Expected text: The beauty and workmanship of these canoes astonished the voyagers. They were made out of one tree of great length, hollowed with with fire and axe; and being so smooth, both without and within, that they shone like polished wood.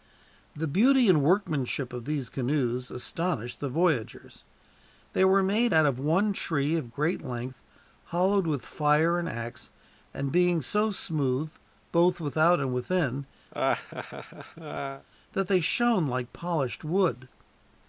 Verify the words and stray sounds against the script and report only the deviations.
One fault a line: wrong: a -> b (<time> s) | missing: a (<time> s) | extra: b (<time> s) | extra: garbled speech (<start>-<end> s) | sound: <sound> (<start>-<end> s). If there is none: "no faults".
missing: with (8.6 s)
sound: laugh (13.5-15.1 s)